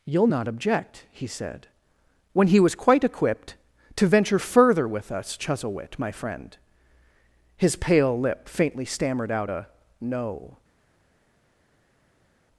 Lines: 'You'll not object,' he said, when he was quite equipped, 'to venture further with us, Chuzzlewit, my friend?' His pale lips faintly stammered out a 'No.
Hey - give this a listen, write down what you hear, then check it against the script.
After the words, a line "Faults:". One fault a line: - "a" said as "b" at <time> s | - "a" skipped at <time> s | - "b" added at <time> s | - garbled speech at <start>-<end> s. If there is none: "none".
'You'll not object,' he said, when he was quite equipped, 'to venture further with us, Chuzzlewit, my friend?' His pale lip faintly stammered out a 'No.
Faults:
- "lips" said as "lip" at 8.2 s